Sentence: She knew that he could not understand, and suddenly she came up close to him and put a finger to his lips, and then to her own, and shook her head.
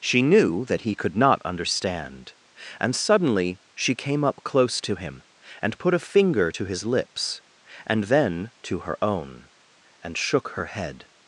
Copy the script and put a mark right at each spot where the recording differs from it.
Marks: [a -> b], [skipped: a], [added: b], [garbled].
She knew that he could not understand, and suddenly she came up close to him and put a finger to his lips, and then to her own, and shook her head.